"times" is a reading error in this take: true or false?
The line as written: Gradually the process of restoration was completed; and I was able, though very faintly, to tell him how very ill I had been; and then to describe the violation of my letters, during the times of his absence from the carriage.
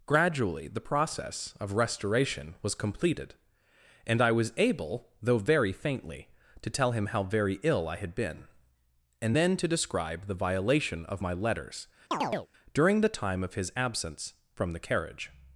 true